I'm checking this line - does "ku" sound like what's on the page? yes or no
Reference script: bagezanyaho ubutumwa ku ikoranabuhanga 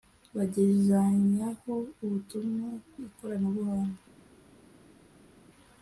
no